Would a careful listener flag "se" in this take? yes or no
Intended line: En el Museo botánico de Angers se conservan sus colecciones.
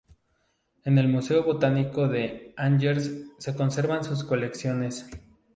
no